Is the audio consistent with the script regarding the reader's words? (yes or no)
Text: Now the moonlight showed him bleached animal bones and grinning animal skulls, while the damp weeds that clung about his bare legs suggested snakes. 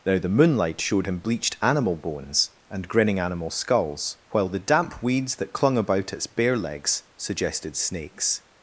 no